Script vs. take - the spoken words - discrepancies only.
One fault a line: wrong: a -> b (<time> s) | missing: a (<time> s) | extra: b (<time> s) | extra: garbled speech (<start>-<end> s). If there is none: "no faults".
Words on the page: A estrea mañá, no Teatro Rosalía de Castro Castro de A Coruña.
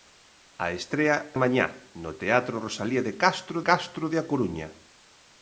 no faults